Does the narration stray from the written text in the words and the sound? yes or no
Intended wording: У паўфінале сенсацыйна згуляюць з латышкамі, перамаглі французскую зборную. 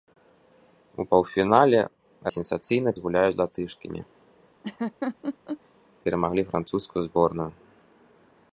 yes